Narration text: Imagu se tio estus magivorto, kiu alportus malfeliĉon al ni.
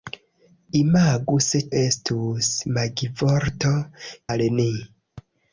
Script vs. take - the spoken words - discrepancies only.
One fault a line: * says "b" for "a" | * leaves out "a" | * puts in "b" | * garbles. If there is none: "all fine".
* leaves out "tio"
* leaves out "kiu alportus malfeliĉon"